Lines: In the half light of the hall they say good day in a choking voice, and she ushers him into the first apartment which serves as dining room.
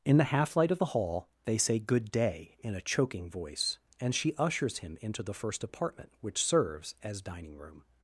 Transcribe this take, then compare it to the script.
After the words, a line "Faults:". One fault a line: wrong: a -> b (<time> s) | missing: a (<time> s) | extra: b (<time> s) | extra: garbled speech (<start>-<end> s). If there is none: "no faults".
In the half light of the hall they say good day in a choking voice, and she ushers him into the first apartment which serves as dining room.
Faults:
no faults